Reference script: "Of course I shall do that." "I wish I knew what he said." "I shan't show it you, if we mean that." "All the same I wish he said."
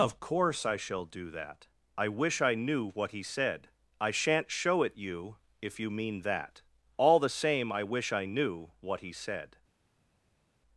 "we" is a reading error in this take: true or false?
true